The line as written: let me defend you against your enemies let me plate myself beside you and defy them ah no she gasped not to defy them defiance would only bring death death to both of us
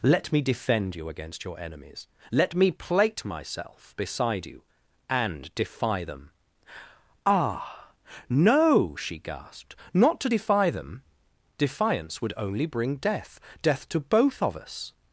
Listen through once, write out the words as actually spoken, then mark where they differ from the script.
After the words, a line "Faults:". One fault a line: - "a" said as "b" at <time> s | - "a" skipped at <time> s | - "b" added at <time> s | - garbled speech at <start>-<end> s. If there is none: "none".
let me defend you against your enemies let me plate myself beside you and defy them ah no she gasped not to defy them defiance would only bring death death to both of us
Faults:
none